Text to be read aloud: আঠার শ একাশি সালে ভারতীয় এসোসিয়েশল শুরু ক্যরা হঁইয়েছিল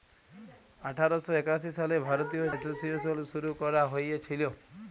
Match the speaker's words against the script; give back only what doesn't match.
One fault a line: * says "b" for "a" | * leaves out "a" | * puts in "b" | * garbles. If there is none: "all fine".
all fine